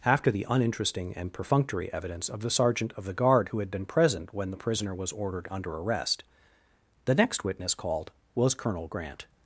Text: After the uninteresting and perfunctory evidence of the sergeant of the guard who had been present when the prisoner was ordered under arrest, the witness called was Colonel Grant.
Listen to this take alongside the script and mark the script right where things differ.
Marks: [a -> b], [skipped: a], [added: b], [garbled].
After the uninteresting and perfunctory evidence of the sergeant of the guard who had been present when the prisoner was ordered under arrest, the [added: next] witness called was Colonel Grant.